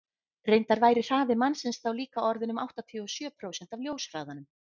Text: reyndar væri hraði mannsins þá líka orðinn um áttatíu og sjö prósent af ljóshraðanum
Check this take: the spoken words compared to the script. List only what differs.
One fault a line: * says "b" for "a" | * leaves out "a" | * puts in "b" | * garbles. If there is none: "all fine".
all fine